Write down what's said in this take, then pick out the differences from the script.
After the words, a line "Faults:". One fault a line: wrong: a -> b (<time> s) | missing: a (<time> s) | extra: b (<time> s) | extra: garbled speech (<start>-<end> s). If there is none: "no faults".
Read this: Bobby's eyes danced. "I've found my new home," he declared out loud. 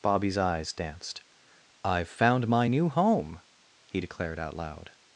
Bobby's eyes danced. "I've found my new home," he declared out loud.
Faults:
no faults